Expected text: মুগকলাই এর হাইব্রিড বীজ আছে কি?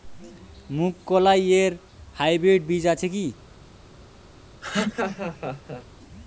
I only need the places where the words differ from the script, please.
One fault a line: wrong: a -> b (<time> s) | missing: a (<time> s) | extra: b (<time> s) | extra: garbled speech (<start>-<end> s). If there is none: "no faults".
no faults